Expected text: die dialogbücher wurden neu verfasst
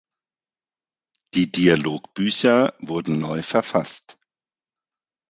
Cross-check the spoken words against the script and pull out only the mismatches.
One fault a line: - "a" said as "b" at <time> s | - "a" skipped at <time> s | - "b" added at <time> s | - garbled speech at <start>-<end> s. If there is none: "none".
none